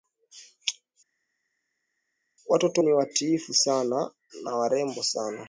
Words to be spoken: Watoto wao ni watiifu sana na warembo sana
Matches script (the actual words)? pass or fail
fail